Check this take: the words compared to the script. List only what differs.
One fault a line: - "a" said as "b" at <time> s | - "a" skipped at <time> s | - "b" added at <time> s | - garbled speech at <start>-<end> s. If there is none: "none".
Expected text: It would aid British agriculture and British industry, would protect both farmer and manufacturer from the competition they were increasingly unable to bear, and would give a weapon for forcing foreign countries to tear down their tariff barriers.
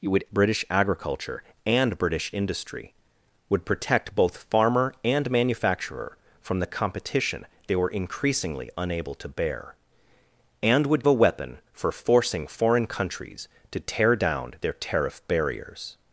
- "aid" skipped at 0.2 s
- "give" skipped at 11.0 s